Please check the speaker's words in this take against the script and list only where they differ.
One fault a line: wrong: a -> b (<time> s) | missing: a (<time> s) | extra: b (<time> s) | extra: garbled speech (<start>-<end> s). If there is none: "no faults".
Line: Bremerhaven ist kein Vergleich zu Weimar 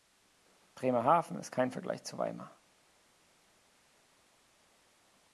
no faults